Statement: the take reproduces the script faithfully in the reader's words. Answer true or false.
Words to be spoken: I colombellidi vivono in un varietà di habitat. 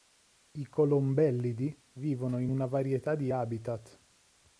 false